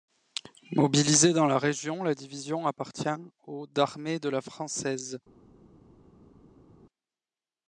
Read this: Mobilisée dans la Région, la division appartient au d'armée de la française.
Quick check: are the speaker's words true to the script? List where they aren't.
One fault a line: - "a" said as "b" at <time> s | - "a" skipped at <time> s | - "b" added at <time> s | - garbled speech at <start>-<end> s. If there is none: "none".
none